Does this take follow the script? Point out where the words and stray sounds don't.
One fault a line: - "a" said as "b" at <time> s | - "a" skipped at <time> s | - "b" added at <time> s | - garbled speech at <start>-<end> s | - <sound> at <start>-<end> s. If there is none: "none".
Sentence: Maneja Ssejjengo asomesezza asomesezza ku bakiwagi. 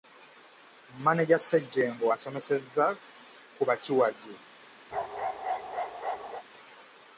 - "asomesezza" skipped at 2.9 s
- bark at 4.9-6.4 s